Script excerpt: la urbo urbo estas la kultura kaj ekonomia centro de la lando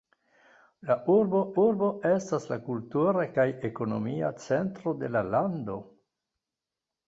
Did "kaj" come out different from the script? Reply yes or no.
no